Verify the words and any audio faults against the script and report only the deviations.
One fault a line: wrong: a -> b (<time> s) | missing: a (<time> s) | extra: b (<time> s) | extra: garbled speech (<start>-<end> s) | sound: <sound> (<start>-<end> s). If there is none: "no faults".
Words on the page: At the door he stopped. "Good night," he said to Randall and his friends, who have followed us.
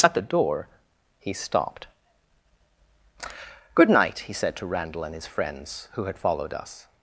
wrong: have -> had (6.0 s)